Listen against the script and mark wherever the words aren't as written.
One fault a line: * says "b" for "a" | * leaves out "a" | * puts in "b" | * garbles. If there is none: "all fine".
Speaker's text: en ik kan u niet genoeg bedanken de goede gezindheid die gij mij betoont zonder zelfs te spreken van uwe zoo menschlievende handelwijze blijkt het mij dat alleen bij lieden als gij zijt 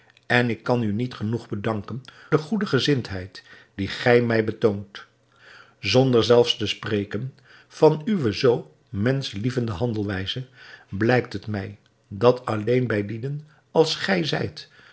all fine